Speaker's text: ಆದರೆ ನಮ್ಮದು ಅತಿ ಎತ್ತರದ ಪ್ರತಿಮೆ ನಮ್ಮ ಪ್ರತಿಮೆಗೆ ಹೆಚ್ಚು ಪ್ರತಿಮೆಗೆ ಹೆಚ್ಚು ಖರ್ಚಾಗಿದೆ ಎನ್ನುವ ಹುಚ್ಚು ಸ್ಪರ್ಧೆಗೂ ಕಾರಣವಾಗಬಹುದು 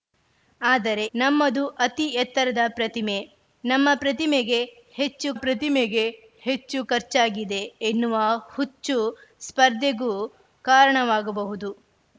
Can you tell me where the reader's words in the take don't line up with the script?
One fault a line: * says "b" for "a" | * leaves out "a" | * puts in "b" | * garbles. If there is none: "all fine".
all fine